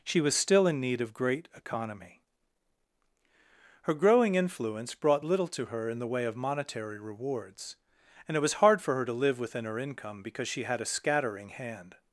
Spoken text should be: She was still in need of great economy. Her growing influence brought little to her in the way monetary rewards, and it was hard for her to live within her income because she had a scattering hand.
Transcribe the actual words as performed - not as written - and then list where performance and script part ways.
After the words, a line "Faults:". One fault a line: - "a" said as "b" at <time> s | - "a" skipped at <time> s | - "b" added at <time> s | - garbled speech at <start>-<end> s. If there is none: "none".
She was still in need of great economy. Her growing influence brought little to her in the way of monetary rewards, and it was hard for her to live within her income because she had a scattering hand.
Faults:
- "of" added at 6.2 s